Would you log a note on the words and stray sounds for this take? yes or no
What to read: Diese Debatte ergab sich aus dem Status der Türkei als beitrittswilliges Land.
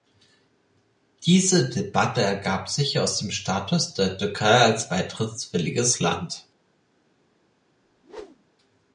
yes